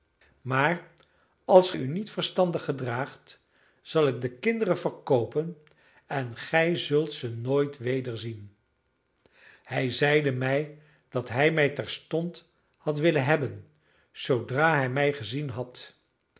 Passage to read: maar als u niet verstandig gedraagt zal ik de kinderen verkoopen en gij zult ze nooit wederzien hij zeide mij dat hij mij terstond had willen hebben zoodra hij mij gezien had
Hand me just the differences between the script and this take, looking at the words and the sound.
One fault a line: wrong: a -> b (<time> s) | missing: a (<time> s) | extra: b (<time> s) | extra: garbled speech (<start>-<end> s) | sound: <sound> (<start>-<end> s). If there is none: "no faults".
no faults